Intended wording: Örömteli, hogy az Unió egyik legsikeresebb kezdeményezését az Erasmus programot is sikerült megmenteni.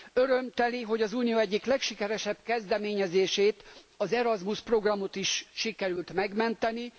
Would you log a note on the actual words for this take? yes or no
no